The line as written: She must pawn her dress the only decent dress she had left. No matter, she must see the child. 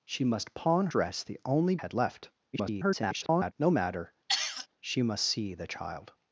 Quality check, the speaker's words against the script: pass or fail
fail